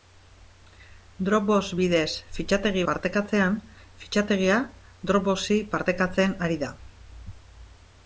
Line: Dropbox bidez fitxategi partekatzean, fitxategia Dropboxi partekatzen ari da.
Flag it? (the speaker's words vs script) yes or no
no